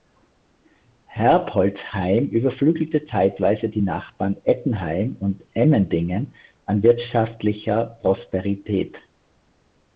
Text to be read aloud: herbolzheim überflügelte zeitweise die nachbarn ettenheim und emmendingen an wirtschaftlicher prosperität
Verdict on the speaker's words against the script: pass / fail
pass